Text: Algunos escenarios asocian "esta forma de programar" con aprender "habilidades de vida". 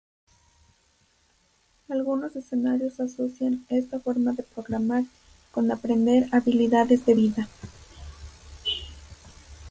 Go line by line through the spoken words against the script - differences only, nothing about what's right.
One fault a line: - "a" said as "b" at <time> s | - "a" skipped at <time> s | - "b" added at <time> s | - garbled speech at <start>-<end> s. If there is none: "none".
none